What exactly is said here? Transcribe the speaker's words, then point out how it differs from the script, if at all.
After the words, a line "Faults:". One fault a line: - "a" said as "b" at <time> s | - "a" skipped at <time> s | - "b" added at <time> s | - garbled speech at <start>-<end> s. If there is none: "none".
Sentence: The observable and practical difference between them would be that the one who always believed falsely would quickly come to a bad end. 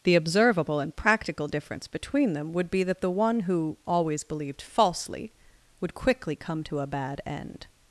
The observable and practical difference between them would be that the one who always believed falsely would quickly come to a bad end.
Faults:
none